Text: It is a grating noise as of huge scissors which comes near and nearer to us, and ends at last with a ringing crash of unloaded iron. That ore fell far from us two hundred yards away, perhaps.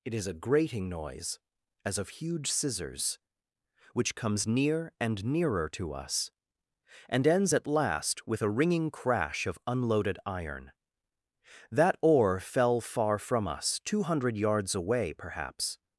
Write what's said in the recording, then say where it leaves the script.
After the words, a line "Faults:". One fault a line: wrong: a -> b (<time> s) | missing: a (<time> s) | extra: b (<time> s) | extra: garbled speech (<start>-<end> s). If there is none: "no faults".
It is a grating noise as of huge scissors which comes near and nearer to us, and ends at last with a ringing crash of unloaded iron. That ore fell far from us two hundred yards away, perhaps.
Faults:
no faults